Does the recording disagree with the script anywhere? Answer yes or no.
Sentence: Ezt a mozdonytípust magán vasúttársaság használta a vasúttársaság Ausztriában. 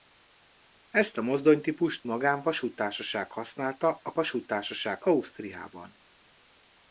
no